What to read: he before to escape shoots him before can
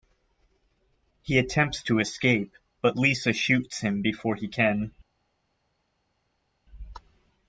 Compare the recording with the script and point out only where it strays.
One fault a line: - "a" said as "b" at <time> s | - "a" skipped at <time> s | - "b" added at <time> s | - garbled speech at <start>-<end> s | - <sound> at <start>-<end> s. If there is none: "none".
- "before" said as "attempts" at 1.4 s
- "but lisa" added at 2.8 s
- "he" added at 4.4 s